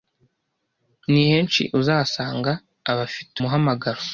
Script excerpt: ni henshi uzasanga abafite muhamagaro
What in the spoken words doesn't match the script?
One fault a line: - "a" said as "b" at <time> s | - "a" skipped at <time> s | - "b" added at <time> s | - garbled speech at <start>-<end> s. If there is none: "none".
none